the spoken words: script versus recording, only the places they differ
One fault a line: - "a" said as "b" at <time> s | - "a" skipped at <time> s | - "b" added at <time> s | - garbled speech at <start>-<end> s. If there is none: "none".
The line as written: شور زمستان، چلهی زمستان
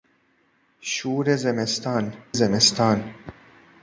- "چلهی" skipped at 2.1 s